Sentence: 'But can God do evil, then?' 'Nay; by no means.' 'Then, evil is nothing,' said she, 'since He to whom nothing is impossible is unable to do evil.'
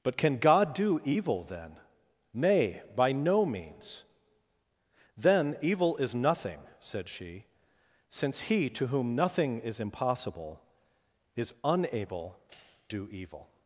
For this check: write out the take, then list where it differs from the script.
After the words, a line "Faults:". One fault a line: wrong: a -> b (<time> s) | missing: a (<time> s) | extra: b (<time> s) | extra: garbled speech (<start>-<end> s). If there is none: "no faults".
'But can God do evil, then?' 'Nay; by no means.' 'Then, evil is nothing,' said she, 'since He to whom nothing is impossible is unable do evil.'
Faults:
missing: to (12.4 s)